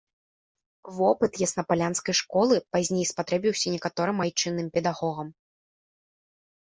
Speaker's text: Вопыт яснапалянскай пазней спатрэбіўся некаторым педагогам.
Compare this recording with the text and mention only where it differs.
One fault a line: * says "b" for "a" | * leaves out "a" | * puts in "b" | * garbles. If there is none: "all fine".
* puts in "школы"
* puts in "айчынным"